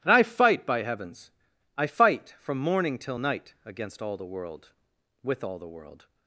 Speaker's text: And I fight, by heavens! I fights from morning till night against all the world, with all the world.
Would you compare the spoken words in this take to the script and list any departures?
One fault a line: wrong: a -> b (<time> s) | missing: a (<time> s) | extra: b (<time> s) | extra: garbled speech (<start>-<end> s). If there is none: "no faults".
wrong: fights -> fight (1.9 s)